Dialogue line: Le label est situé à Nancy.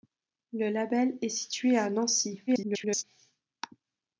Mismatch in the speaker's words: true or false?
true